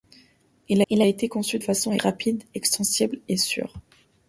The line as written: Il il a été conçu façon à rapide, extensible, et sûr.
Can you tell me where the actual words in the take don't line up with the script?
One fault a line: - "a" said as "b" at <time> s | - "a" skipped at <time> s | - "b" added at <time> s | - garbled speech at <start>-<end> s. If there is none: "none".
none